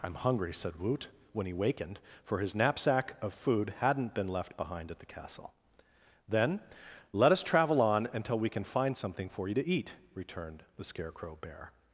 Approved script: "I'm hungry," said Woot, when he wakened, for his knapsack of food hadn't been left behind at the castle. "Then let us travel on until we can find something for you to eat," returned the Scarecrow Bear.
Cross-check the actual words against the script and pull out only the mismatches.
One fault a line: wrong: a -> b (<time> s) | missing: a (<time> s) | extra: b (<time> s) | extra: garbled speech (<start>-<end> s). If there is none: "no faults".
no faults